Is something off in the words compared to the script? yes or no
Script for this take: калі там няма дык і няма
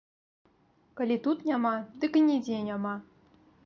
yes